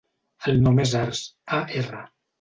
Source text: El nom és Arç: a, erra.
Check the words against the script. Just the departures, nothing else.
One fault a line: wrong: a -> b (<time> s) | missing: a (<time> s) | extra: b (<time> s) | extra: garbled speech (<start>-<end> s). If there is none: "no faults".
no faults